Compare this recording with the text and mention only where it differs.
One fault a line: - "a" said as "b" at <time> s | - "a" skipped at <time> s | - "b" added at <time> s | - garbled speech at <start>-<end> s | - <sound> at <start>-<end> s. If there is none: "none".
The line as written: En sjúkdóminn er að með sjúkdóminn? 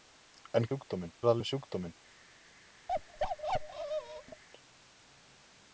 - bark at 2.9-4.4 s